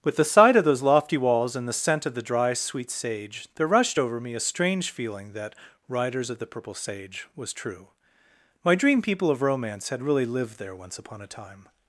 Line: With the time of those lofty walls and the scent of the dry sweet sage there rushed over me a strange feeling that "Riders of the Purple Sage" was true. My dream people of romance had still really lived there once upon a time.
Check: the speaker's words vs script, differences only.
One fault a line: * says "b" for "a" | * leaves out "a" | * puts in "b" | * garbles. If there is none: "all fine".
* says "sight" for "time"
* leaves out "still"